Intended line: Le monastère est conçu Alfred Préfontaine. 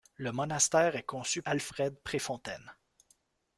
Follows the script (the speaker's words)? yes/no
yes